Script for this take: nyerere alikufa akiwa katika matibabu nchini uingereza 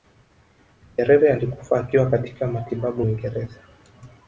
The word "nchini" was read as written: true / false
false